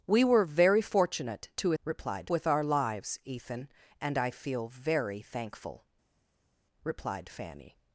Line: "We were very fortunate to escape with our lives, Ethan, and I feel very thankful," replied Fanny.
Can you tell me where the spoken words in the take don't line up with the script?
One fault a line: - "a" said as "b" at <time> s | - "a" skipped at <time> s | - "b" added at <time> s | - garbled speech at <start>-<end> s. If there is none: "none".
- "escape" said as "replied" at 1.8 s